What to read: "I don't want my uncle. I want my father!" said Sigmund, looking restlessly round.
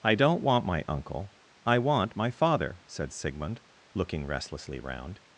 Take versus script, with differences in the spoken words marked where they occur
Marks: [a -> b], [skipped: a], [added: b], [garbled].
"I don't want my uncle. I want my father!" said Sigmund, looking restlessly round.